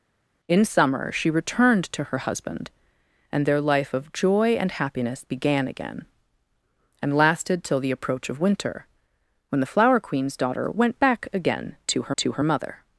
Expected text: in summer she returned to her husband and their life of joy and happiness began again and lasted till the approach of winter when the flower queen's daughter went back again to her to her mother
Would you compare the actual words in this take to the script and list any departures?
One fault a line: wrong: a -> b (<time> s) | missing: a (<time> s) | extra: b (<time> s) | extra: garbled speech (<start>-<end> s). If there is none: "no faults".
no faults